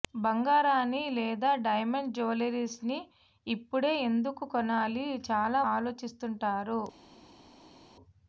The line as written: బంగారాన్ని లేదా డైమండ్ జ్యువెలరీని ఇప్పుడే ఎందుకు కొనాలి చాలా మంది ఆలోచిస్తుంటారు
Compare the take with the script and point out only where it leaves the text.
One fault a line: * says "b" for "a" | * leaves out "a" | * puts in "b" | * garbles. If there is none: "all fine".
* leaves out "మంది"